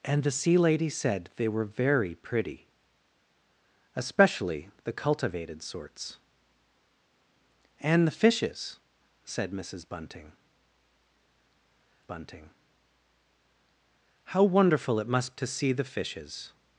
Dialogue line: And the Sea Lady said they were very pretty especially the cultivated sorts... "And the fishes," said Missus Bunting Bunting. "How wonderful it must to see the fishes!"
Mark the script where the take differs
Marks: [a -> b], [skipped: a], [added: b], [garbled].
And the Sea Lady said they were very pretty especially the cultivated sorts... "And the fishes," said Missus Bunting Bunting. "How wonderful it must to see the fishes!"